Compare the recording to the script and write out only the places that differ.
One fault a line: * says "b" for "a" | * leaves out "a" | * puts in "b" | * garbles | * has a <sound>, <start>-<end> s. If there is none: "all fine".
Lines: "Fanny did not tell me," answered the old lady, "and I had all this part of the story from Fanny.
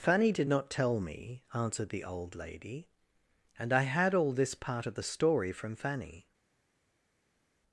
all fine